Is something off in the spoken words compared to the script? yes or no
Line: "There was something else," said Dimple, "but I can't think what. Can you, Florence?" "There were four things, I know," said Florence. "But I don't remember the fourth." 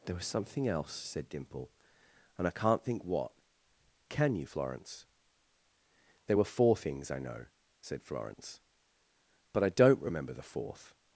yes